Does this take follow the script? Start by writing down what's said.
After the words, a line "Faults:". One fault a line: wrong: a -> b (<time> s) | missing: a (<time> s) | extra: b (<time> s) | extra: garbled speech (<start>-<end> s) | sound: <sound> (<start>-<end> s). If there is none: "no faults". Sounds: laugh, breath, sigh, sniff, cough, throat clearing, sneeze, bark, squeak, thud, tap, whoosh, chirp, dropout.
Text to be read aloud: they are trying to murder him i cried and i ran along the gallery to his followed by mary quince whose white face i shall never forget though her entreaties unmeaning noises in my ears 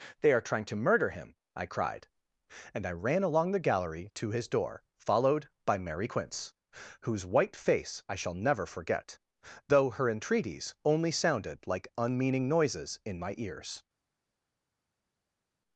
they are trying to murder him i cried and i ran along the gallery to his door followed by mary quince whose white face i shall never forget though her entreaties only sounded like unmeaning noises in my ears
Faults:
extra: door (4.5 s)
extra: only sounded like (10.8 s)